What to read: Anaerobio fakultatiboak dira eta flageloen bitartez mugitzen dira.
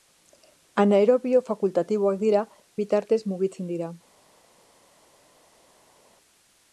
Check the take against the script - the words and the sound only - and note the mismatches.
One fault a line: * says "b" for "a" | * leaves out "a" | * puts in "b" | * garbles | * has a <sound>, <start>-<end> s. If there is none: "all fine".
* leaves out "eta flageloen"